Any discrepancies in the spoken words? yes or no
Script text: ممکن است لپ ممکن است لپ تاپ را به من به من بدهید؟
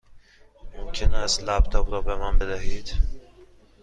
yes